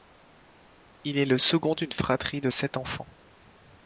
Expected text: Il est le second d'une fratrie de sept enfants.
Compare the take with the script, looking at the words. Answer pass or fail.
pass